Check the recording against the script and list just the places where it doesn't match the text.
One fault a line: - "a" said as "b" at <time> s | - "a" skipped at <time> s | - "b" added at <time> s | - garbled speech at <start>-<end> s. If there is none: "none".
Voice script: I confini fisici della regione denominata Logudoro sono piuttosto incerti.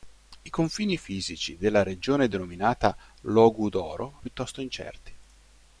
- "sono" skipped at 4.2 s